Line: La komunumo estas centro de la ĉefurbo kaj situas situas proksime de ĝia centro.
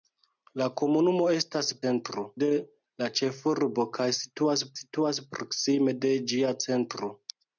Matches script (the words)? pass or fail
pass